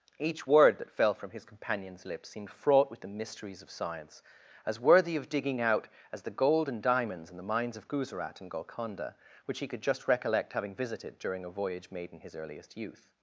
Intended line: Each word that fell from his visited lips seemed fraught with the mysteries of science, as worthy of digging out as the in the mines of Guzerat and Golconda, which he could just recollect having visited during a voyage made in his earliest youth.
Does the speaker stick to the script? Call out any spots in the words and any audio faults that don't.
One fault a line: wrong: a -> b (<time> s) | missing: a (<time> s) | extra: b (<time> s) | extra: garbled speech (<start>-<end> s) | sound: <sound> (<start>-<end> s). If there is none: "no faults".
wrong: visited -> companion's (1.4 s)
extra: gold and diamonds (6.3 s)